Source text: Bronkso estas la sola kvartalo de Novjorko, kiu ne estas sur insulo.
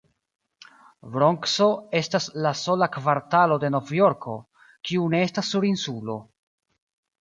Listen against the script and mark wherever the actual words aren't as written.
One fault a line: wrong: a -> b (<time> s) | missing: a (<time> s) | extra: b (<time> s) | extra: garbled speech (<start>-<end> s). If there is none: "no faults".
no faults